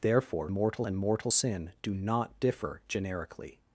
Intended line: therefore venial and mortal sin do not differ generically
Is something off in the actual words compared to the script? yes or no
yes